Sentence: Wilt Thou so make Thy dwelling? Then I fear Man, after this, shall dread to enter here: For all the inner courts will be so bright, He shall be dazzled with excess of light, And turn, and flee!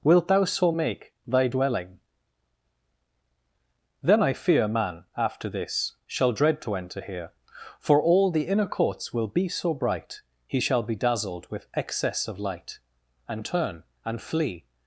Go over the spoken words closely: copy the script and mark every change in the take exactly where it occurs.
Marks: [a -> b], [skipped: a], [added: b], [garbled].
Wilt Thou so make Thy dwelling? Then I fear Man, after this, shall dread to enter here: For all the inner courts will be so bright, He shall be dazzled with excess of light, And turn, and flee!